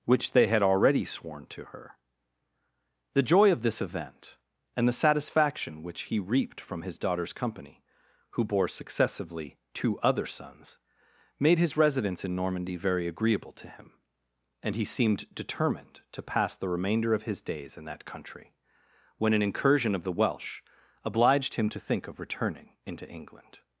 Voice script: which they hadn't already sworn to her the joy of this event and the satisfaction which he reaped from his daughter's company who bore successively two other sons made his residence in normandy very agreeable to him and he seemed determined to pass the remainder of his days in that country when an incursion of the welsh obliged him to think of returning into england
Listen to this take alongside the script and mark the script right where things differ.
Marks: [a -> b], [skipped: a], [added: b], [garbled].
which they [hadn't -> had] already sworn to her the joy of this event and the satisfaction which he reaped from his daughter's company who bore successively two other sons made his residence in normandy very agreeable to him and he seemed determined to pass the remainder of his days in that country when an incursion of the welsh obliged him to think of returning into england